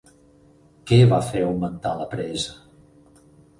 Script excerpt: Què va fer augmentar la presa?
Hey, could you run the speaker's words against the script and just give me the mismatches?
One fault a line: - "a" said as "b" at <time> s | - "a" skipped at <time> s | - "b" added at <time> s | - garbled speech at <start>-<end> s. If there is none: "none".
none